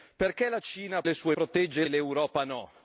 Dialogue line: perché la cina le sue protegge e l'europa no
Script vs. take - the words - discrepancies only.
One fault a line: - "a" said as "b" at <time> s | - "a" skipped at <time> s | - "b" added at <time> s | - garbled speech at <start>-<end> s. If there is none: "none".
none